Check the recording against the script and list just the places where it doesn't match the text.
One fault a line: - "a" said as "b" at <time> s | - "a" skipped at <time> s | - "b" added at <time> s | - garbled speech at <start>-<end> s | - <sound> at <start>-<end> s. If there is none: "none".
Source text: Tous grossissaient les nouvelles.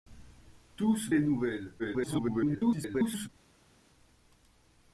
- "grossissaient" skipped at 1.1 s
- garbled speech at 1.8-3.3 s